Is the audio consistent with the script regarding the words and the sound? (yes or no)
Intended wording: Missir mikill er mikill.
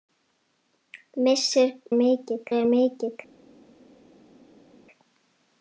yes